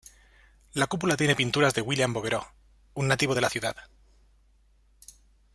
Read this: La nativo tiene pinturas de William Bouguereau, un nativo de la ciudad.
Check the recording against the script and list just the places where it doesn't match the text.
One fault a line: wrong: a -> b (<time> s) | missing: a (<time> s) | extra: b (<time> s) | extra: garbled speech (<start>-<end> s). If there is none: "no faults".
wrong: nativo -> cúpula (0.9 s)